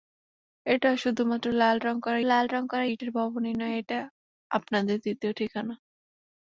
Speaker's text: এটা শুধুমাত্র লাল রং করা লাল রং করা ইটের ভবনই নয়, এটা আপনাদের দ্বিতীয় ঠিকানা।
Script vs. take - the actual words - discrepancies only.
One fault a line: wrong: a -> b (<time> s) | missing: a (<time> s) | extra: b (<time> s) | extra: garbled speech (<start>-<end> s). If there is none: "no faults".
no faults